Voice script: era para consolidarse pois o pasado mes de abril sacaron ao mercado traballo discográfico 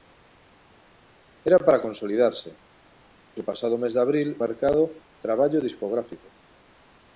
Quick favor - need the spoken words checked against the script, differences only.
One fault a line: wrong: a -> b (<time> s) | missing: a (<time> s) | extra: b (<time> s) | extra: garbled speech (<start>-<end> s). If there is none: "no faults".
missing: pois (2.5 s)
missing: sacaron ao (4.3 s)